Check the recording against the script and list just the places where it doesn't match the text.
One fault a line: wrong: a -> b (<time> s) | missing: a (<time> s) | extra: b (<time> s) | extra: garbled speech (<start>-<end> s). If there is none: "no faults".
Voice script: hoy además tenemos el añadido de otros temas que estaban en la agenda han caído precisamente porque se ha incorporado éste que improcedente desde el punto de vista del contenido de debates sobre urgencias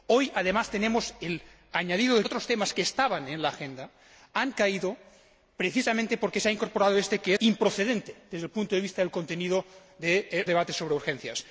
no faults